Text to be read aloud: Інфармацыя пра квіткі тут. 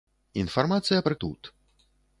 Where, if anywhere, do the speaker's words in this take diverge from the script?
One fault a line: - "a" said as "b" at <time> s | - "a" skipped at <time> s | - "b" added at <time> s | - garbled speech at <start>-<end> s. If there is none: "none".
- "квіткі" skipped at 1.1 s